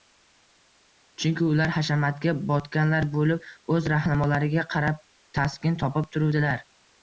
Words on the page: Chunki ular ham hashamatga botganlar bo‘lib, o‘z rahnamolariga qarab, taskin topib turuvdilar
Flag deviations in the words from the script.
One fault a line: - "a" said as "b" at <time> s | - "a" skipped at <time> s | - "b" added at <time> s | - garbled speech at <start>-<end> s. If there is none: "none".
- "ham" skipped at 1.7 s